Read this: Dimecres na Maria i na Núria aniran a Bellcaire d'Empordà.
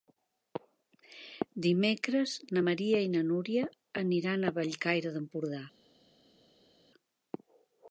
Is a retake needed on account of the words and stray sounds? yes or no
no